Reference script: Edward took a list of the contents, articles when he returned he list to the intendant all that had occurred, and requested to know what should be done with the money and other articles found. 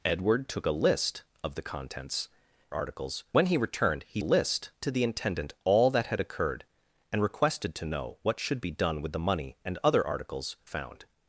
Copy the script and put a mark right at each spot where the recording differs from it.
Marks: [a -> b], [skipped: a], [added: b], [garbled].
Edward took a list of the contents, articles when he returned he list to the intendant all that had occurred, and requested to know what should be done with the money and other articles found.